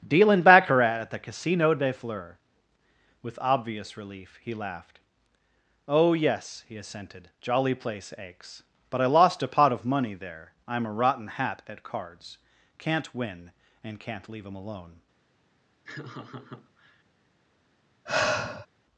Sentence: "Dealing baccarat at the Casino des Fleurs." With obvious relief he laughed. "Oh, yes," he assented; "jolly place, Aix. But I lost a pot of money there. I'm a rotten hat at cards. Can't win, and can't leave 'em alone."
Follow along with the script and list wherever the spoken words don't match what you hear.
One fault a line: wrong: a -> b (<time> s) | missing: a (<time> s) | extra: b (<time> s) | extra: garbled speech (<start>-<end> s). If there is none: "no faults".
no faults